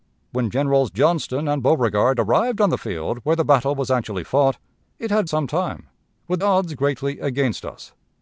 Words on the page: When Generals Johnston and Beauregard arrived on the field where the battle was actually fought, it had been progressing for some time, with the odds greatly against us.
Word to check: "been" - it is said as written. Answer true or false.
false